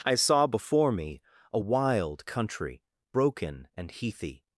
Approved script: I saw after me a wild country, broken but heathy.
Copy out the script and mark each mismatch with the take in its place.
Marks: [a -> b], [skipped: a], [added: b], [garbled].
I saw [after -> before] me a wild country, broken [but -> and] heathy.